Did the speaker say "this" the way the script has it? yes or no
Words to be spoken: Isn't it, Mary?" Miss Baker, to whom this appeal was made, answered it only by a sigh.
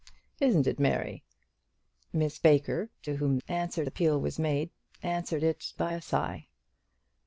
no